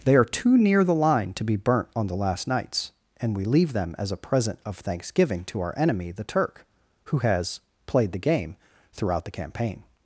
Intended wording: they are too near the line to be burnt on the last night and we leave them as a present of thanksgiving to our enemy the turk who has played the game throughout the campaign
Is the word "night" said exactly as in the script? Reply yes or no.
no